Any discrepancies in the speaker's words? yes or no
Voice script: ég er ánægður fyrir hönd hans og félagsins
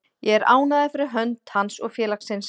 no